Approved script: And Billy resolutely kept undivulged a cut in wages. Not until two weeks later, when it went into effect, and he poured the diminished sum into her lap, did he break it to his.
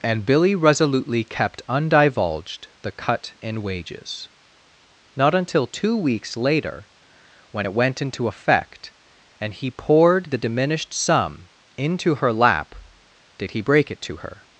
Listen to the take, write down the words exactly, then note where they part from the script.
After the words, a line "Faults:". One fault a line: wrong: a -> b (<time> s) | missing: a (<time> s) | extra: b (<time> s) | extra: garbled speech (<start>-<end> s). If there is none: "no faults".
And Billy resolutely kept undivulged the cut in wages. Not until two weeks later, when it went into effect, and he poured the diminished sum into her lap, did he break it to her.
Faults:
wrong: a -> the (2.8 s)
wrong: his -> her (14.2 s)